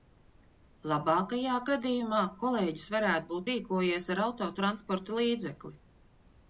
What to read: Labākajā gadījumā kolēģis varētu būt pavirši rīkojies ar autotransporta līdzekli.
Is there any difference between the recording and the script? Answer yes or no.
yes